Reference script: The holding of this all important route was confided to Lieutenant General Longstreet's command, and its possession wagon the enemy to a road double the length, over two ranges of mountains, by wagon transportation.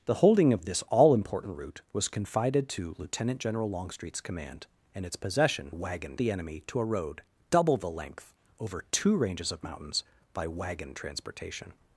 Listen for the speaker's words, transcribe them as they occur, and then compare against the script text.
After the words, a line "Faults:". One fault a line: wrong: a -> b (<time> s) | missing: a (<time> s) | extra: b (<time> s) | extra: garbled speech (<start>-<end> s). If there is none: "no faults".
The holding of this all important route was confided to Lieutenant General Longstreet's command, and its possession wagon the enemy to a road double the length, over two ranges of mountains, by wagon transportation.
Faults:
no faults